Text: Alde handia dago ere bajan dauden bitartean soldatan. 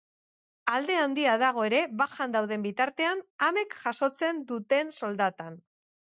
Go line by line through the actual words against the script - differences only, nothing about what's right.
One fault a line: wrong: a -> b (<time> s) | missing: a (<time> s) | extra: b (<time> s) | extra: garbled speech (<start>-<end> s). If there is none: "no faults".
extra: amek jasotzen duten (3.5 s)